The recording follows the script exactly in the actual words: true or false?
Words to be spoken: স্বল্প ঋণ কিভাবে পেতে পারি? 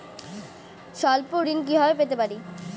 true